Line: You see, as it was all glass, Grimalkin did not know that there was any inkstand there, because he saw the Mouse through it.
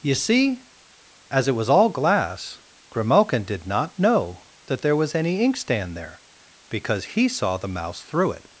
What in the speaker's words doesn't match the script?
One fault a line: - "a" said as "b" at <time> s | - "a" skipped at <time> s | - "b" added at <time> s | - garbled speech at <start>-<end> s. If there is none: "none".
none